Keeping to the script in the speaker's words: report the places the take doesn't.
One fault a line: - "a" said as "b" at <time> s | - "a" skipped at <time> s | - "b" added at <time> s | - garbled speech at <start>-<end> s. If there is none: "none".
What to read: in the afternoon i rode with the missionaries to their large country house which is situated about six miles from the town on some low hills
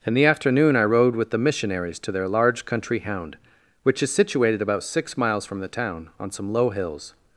- "house" said as "hound" at 3.0 s